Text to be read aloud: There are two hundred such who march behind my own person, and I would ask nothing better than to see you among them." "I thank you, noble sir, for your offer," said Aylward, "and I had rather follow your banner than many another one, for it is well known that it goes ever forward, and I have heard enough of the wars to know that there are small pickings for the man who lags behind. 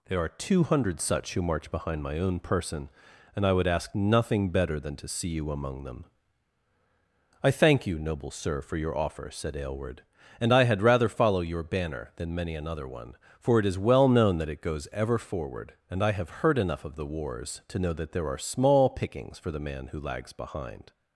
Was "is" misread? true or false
false